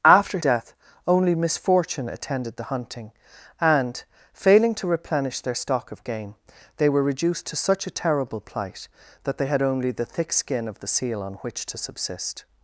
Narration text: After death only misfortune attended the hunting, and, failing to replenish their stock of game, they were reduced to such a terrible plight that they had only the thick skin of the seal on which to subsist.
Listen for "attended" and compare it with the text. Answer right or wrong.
right